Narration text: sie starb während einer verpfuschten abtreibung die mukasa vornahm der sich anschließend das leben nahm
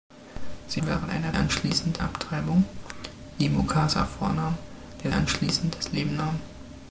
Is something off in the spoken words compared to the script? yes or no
yes